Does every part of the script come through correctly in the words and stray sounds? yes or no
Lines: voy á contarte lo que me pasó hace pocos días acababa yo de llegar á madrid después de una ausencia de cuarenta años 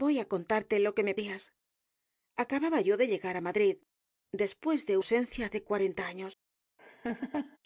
no